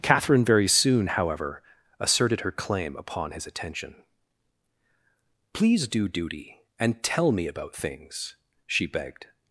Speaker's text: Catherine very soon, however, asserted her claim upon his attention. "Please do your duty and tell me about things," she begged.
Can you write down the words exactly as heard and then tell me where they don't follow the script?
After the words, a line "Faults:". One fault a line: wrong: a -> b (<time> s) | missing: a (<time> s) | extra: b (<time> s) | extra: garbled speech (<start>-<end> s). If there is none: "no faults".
Catherine very soon, however, asserted her claim upon his attention. "Please do duty and tell me about things," she begged.
Faults:
missing: your (6.1 s)